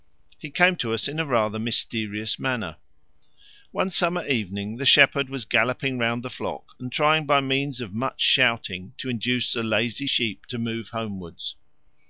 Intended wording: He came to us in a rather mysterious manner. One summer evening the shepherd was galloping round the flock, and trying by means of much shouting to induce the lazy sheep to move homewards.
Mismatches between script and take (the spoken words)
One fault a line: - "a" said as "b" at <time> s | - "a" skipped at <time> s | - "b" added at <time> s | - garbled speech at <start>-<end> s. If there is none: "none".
none